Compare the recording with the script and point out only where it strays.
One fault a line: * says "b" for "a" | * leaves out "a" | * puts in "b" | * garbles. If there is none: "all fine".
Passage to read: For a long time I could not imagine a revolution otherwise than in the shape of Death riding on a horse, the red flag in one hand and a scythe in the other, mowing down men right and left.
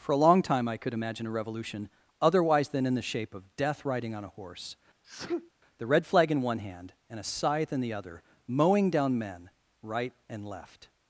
* leaves out "not"